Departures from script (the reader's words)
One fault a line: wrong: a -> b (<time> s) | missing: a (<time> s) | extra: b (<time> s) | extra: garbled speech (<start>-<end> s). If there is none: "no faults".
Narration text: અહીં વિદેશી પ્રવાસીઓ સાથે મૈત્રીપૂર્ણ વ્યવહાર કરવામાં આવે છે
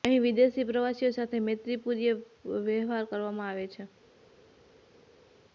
no faults